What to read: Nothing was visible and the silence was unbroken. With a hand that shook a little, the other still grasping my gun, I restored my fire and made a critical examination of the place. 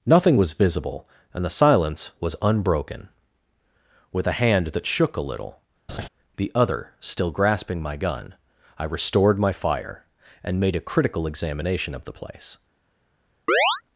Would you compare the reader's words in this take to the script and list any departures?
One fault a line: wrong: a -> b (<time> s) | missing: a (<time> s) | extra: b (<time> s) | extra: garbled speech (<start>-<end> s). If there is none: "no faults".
no faults